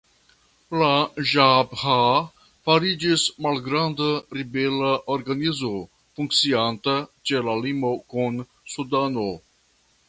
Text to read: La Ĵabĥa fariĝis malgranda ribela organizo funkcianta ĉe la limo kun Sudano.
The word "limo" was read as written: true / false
true